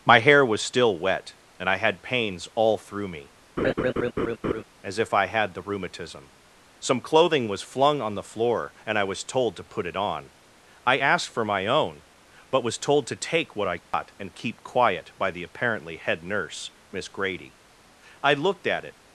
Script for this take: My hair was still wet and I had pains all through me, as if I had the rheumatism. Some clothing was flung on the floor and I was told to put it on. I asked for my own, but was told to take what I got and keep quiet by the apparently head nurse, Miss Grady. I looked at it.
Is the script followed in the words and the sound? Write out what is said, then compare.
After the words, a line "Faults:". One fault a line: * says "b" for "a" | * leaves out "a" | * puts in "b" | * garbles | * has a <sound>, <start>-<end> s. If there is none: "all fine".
My hair was still wet and I had pains all through me, as if I had the rheumatism. Some clothing was flung on the floor and I was told to put it on. I asked for my own, but was told to take what I got and keep quiet by the apparently head nurse, Miss Grady. I looked at it.
Faults:
* has a laugh, 3.6-4.6 s
* has a dropout, 13.8-13.9 s